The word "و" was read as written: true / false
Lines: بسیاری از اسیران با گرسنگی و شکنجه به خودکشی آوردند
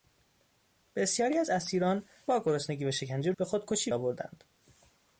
true